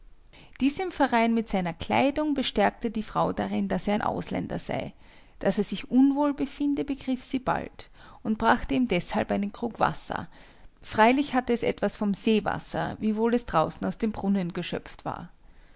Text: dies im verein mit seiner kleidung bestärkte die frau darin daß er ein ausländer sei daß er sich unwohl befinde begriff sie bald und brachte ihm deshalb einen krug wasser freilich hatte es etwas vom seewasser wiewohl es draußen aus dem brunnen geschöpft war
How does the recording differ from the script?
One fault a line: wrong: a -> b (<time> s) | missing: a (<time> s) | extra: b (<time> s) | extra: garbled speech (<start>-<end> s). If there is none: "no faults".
no faults